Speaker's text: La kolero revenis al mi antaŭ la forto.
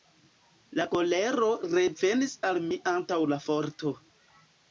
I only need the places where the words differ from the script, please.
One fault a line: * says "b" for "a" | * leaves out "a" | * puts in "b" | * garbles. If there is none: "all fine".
all fine